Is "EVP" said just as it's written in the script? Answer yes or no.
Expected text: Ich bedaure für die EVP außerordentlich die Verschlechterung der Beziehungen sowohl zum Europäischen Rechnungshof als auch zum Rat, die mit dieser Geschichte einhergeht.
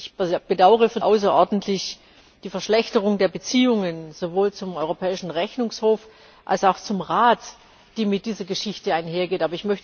no